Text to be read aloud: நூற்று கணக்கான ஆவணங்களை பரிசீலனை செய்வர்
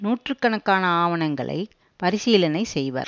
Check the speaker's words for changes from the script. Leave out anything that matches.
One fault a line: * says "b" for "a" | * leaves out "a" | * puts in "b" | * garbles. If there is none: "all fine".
all fine